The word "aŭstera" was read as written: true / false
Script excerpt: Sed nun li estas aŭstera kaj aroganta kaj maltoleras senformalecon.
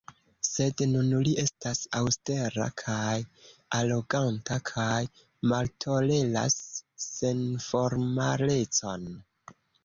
true